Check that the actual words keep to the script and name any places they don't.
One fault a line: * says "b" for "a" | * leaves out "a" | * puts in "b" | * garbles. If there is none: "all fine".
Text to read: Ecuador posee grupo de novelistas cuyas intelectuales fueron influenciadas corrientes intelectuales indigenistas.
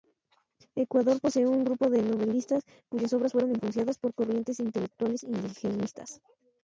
* puts in "un"
* says "obras" for "intelectuales"
* puts in "por"